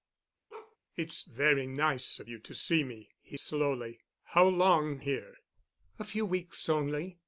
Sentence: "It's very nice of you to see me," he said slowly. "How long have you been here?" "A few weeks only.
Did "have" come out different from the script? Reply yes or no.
yes